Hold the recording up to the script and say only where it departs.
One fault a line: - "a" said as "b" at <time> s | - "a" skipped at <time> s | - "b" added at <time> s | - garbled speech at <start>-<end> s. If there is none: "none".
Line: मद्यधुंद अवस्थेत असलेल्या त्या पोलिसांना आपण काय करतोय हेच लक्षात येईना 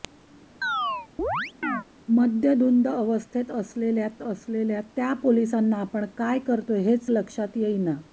- "असलेल्या" added at 4.2 s